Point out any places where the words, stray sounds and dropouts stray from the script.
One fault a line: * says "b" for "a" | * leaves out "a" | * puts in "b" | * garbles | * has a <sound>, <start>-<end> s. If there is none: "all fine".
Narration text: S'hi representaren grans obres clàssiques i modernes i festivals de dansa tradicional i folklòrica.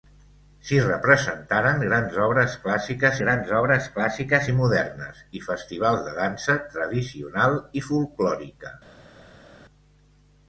* puts in "grans obres clàssiques"